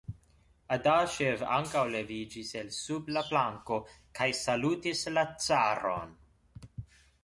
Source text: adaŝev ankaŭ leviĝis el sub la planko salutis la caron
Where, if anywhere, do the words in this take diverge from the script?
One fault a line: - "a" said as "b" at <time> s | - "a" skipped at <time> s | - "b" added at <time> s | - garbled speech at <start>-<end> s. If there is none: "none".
- "kaj" added at 4.2 s